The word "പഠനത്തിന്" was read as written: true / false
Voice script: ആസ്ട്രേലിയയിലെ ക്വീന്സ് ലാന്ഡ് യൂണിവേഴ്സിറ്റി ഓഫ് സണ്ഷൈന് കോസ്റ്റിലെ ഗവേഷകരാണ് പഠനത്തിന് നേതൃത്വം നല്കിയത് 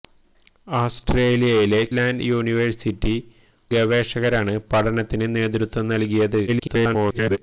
true